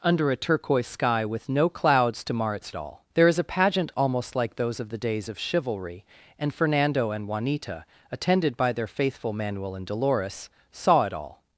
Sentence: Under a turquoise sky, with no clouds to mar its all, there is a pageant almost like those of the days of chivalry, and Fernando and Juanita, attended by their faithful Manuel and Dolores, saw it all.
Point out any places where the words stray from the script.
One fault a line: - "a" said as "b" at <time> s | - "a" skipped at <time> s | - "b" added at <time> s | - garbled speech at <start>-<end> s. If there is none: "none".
none